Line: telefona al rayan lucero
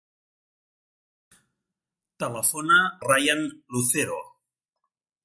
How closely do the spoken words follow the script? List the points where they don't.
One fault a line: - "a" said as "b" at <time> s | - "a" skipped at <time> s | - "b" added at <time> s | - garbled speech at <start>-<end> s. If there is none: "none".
- "al" skipped at 2.8 s